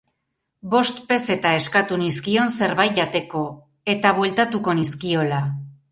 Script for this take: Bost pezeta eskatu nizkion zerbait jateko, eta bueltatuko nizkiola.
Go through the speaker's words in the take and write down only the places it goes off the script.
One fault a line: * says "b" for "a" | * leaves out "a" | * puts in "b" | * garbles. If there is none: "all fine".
all fine